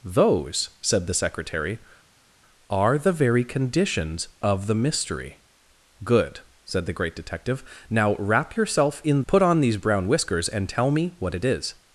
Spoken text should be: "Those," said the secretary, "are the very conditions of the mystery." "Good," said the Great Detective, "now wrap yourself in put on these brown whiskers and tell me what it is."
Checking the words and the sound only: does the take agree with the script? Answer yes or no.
yes